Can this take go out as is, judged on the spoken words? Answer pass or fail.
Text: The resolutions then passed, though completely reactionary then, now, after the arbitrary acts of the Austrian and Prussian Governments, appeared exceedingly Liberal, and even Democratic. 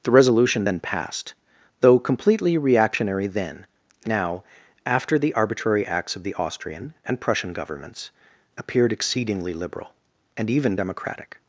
fail